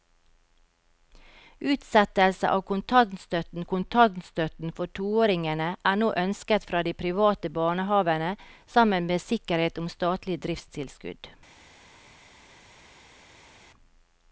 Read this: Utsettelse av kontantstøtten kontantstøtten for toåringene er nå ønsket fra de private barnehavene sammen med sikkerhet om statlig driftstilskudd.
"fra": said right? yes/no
yes